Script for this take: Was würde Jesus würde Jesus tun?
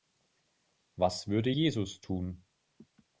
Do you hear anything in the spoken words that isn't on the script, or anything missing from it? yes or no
yes